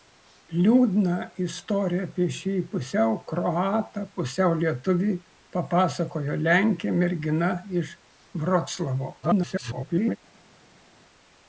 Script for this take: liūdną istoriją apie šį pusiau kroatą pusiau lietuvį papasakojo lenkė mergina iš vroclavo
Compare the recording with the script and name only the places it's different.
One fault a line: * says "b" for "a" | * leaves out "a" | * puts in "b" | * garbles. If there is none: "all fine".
* garbles